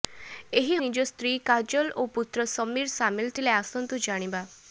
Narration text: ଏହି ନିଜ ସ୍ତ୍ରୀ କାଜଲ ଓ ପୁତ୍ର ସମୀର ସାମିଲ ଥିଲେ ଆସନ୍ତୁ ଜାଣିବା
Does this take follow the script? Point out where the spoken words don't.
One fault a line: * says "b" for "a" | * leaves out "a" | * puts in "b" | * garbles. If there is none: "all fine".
all fine